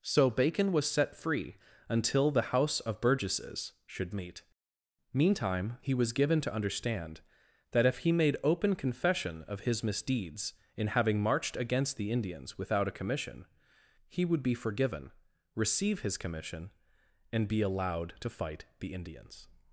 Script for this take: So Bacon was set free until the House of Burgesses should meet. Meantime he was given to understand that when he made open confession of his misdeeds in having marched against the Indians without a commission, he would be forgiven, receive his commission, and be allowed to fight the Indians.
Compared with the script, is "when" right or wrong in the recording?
wrong